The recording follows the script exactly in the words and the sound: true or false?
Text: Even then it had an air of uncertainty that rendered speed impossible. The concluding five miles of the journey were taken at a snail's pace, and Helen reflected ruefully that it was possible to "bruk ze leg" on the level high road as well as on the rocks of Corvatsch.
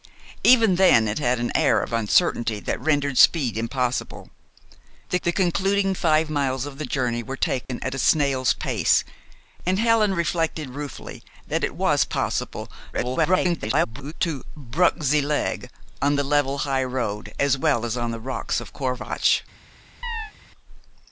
false